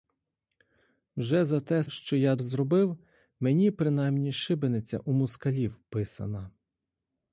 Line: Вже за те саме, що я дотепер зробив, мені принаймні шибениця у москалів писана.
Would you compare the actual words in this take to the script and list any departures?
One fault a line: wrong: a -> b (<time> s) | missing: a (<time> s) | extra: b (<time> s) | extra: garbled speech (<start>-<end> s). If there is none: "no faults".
missing: саме (1.8 s)
missing: дотепер (2.4 s)